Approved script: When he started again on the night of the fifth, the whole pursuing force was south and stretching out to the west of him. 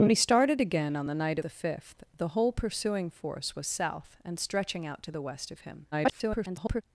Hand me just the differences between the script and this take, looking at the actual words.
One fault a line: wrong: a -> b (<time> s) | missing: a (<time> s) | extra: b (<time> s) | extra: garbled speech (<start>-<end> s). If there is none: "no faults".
missing: of (1.4 s)
extra: garbled speech (5.9-6.8 s)